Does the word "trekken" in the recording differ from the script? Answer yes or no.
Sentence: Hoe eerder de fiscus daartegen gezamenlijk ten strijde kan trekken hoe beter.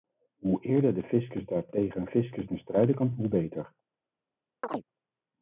yes